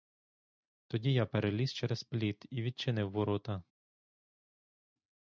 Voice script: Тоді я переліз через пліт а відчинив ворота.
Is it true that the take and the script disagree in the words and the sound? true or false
true